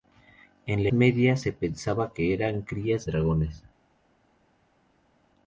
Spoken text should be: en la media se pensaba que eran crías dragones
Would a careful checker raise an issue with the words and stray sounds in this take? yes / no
no